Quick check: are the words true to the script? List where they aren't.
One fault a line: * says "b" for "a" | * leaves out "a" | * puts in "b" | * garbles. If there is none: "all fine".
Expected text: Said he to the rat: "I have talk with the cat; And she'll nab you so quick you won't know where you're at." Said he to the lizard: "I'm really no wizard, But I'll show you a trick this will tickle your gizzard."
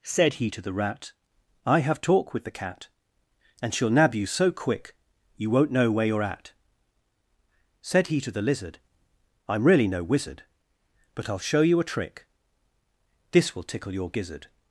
all fine